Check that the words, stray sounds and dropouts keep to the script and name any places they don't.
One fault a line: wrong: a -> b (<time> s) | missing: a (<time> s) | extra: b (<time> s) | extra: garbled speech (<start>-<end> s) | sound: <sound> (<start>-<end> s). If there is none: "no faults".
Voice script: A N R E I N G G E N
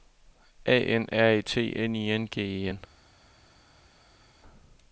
extra: T N (1.4 s)
missing: G (2.4 s)